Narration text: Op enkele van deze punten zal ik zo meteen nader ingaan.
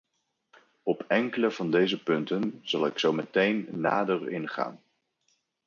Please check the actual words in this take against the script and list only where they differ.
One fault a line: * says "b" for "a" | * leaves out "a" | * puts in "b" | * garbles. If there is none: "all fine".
all fine